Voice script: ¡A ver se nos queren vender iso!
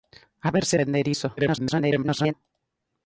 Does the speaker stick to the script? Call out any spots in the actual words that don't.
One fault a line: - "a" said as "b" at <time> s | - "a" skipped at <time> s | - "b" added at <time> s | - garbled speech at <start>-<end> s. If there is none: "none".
- "nos queren" skipped at 0.8 s
- garbled speech at 1.4-2.3 s